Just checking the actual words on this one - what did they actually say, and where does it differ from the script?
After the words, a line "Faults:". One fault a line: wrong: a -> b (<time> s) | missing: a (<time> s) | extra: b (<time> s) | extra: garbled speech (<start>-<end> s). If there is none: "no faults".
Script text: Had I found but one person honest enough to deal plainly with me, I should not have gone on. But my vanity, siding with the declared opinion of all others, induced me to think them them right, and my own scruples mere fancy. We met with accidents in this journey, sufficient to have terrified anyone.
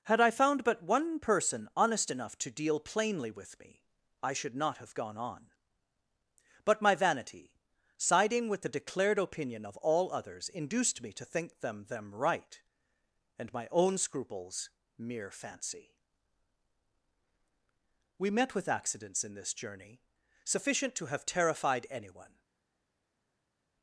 Had I found but one person honest enough to deal plainly with me, I should not have gone on. But my vanity, siding with the declared opinion of all others, induced me to think them them right, and my own scruples mere fancy. We met with accidents in this journey, sufficient to have terrified anyone.
Faults:
no faults